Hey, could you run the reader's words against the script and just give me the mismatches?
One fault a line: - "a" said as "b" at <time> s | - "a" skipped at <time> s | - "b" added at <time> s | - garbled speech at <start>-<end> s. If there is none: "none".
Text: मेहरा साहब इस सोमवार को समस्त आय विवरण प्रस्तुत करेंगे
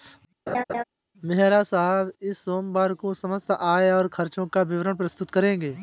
- "और खर्चों का" added at 3.9 s